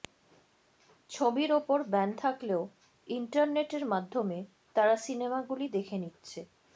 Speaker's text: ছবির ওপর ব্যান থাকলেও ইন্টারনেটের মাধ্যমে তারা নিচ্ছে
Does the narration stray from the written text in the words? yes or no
yes